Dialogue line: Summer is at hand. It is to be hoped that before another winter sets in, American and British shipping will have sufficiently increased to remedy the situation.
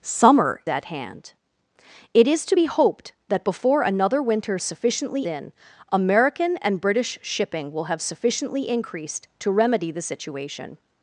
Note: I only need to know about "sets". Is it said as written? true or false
false